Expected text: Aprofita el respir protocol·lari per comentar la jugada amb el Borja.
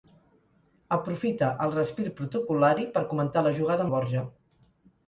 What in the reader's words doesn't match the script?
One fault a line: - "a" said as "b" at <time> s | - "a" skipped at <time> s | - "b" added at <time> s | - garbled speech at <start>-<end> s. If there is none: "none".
- "amb" skipped at 3.9 s